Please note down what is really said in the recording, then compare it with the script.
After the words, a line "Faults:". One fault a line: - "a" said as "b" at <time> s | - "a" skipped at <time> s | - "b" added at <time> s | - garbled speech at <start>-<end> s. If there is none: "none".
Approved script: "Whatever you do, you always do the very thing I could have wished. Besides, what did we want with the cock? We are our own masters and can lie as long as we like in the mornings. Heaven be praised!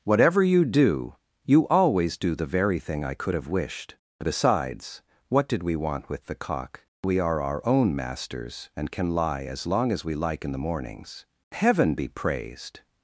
"Whatever you do, you always do the very thing I could have wished. Besides, what did we want with the cock? We are our own masters and can lie as long as we like in the mornings. Heaven be praised!
Faults:
none